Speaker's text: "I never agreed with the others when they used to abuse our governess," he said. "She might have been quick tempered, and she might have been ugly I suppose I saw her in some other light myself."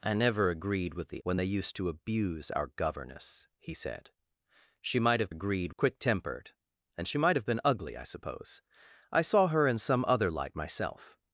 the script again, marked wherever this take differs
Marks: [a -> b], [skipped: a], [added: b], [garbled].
"I never agreed with the [skipped: others] when they used to abuse our governess," he said. "She might have [been -> agreed] quick tempered, and she might have been ugly I suppose I saw her in some other light myself."